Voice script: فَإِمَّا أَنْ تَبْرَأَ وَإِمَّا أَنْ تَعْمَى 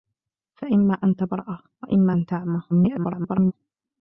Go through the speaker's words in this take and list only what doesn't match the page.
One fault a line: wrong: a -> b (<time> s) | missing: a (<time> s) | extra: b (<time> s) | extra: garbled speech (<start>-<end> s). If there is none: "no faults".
extra: garbled speech (2.7-3.5 s)